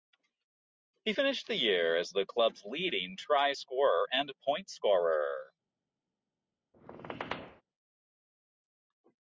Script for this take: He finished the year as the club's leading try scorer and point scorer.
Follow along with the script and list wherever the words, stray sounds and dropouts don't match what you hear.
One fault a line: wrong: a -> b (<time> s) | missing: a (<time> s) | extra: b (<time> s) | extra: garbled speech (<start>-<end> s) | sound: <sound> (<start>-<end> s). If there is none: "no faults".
sound: squeak (6.7-7.6 s)